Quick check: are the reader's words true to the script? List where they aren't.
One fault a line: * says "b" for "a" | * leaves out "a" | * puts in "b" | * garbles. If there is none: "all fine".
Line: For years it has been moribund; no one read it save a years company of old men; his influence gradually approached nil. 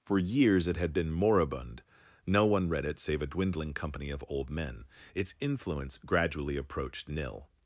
* says "had" for "has"
* says "dwindling" for "years"
* says "its" for "his"